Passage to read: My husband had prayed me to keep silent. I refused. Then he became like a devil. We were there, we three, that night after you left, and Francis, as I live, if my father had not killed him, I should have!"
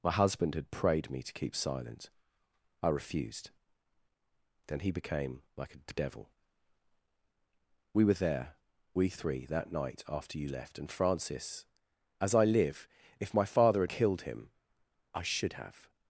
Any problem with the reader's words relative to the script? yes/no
yes